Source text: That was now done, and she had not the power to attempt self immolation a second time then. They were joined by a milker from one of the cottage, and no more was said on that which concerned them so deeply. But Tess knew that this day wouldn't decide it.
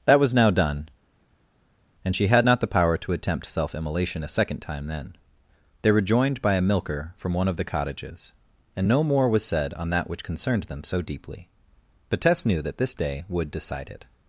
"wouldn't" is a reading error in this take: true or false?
true